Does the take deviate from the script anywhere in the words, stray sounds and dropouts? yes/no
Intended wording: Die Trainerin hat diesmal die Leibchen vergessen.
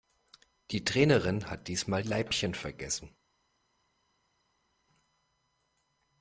yes